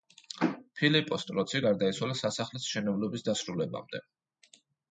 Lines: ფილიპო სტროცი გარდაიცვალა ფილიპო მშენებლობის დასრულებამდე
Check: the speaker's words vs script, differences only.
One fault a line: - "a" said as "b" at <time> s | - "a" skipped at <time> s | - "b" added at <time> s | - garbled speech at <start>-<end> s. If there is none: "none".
- "ფილიპო" said as "სასახლის" at 2.2 s